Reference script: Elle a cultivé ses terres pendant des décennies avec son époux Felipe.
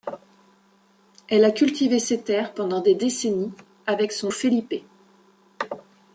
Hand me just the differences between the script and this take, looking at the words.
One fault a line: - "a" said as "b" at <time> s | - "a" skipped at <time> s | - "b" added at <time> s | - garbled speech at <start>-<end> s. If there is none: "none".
- "époux" skipped at 4.3 s